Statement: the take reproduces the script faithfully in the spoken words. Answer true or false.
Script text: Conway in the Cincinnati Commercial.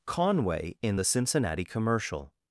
true